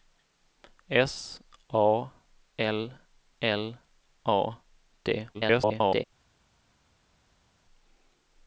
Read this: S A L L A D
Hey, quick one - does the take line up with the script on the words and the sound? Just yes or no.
no